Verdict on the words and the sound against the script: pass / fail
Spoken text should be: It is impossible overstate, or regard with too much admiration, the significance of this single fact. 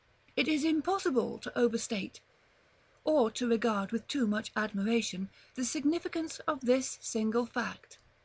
fail